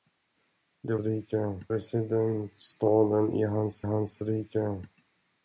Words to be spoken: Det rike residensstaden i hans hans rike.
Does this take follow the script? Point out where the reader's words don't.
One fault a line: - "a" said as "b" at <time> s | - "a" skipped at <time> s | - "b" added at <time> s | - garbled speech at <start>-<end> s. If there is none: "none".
none